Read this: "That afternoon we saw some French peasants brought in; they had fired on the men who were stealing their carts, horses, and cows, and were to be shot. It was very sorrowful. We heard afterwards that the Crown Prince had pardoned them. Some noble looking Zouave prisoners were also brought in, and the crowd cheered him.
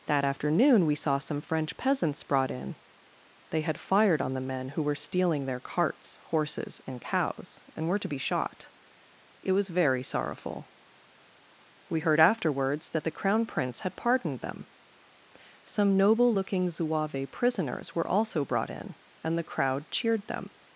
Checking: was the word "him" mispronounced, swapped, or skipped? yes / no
yes